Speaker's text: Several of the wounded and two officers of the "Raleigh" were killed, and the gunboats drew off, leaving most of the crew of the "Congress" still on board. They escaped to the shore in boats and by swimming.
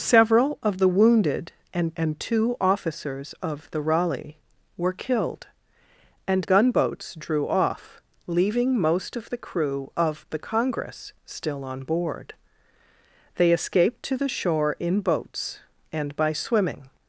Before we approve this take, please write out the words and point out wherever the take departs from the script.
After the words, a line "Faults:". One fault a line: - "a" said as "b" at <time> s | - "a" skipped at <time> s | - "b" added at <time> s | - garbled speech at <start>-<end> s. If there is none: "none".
Several of the wounded and and two officers of the "Raleigh" were killed, and gunboats drew off, leaving most of the crew of the "Congress" still on board. They escaped to the shore in boats and by swimming.
Faults:
- "and" added at 2.0 s
- "the" skipped at 6.4 s